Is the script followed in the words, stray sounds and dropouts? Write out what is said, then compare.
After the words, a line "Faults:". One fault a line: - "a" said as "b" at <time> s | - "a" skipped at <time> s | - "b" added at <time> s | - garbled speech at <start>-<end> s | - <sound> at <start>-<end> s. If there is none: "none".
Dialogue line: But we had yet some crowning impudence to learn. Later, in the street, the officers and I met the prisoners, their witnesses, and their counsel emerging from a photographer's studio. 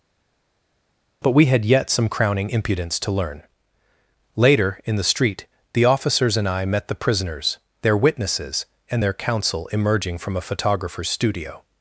But we had yet some crowning impudence to learn. Later, in the street, the officers and I met the prisoners, their witnesses, and their counsel emerging from a photographer's studio.
Faults:
none